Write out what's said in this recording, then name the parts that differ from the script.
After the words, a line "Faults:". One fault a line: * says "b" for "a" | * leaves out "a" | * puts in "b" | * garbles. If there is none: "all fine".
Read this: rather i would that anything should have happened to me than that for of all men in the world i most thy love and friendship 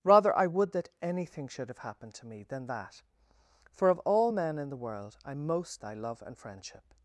rather i would that anything should have happened to me than that for of all men in the world i most thy love and friendship
Faults:
all fine